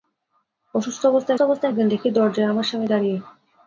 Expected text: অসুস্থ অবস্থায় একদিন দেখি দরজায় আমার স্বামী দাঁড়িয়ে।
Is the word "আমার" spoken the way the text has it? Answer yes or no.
yes